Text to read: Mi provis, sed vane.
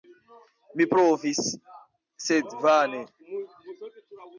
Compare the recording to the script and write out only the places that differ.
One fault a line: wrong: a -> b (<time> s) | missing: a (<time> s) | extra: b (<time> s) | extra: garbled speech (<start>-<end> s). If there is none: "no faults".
no faults